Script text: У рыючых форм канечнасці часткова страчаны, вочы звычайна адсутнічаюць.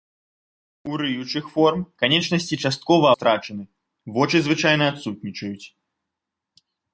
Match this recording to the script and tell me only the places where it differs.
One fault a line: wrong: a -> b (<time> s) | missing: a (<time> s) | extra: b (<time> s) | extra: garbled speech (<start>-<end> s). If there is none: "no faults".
no faults